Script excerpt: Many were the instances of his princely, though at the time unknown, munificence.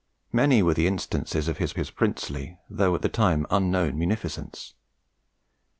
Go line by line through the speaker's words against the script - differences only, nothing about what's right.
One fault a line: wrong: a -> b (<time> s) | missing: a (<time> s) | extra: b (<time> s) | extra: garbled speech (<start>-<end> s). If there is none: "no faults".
extra: his (1.8 s)